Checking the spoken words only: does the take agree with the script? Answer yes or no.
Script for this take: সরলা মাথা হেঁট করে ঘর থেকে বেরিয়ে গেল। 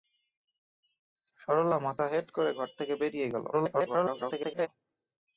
no